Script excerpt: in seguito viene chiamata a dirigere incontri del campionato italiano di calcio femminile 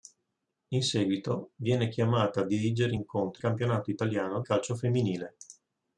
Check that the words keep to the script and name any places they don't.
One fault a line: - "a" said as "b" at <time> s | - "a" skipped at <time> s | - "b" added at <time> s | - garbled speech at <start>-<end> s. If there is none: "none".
- "del" skipped at 3.4 s
- "di" skipped at 4.4 s